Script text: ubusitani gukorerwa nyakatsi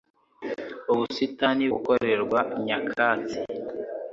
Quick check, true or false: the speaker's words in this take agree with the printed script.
true